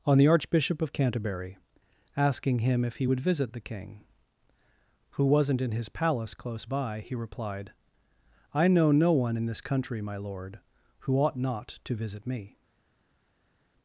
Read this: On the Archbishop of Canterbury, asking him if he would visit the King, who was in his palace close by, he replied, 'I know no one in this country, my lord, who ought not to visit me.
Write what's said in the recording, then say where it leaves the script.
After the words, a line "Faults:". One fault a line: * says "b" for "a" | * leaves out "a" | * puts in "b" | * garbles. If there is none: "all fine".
On the Archbishop of Canterbury, asking him if he would visit the King, who wasn't in his palace close by, he replied, 'I know no one in this country, my lord, who ought not to visit me.
Faults:
* says "wasn't" for "was"